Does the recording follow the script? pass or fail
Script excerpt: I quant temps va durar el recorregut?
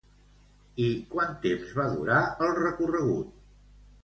pass